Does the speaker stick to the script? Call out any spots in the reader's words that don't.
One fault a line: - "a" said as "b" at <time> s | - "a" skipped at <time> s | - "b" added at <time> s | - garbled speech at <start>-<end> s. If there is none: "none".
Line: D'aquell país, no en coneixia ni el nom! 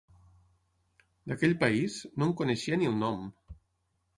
none